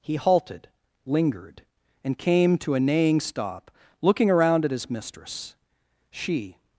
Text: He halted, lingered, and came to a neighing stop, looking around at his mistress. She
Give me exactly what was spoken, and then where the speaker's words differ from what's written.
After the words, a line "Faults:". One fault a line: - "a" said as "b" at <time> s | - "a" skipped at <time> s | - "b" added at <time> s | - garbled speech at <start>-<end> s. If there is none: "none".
He halted, lingered, and came to a neighing stop, looking around at his mistress. She
Faults:
none